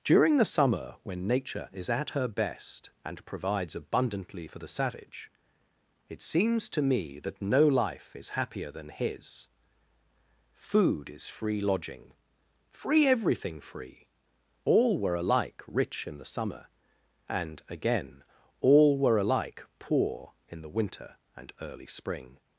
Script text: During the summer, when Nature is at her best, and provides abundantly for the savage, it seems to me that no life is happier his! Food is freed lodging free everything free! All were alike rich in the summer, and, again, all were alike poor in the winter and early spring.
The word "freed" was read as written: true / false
false